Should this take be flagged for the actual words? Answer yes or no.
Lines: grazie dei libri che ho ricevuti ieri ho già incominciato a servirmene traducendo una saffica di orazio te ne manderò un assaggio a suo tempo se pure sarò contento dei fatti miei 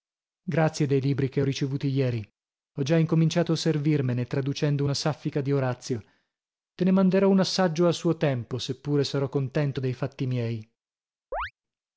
no